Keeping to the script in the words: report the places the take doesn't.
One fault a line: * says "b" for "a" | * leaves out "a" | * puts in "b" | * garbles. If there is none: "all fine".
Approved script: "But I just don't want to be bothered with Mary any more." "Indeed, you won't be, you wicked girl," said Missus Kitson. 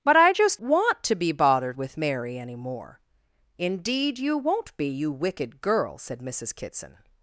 * leaves out "don't"